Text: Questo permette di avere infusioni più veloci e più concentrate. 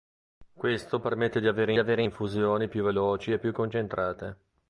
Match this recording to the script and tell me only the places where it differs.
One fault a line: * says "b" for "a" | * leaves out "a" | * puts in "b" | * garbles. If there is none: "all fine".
* puts in "avere"